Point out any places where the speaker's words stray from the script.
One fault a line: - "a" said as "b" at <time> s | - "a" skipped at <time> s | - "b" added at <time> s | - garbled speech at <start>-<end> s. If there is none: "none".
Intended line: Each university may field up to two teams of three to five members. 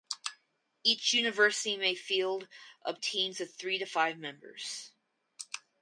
- "to two" skipped at 3.0 s